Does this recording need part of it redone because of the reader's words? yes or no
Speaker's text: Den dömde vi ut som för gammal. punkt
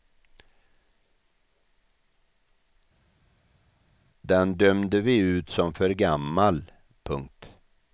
no